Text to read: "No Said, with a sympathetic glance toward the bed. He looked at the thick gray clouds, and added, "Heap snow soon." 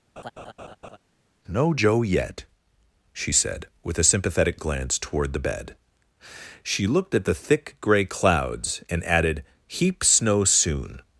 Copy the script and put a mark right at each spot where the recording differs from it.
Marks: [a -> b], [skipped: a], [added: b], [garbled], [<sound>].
[laugh] "No [added: Joe yet she] Said, with a sympathetic glance toward the bed. [He -> She] looked at the thick gray clouds, and added, "Heap snow soon."